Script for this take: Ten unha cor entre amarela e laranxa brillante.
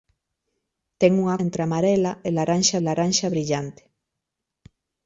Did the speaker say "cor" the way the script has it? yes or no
no